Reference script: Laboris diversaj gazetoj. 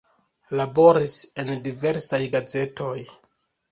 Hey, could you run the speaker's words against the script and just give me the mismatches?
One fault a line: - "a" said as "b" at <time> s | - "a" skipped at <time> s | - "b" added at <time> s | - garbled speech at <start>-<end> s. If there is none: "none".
- "en" added at 1.4 s